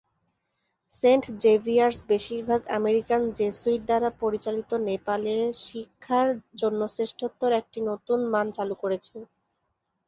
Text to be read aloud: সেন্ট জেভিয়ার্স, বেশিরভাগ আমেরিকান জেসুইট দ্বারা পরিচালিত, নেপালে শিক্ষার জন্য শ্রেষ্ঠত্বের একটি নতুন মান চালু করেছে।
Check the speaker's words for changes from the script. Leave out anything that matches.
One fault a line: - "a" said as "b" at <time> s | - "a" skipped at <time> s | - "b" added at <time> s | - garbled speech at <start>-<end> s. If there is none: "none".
none